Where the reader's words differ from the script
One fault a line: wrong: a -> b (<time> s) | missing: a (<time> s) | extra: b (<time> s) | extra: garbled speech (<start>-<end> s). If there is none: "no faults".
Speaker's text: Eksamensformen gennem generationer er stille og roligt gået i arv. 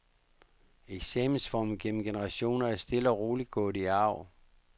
no faults